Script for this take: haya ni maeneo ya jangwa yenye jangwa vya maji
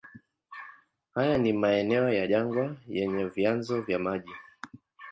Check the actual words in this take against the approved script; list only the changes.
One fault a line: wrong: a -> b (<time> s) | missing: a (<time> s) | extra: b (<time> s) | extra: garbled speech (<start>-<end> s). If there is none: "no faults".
wrong: jangwa -> vyanzo (3.2 s)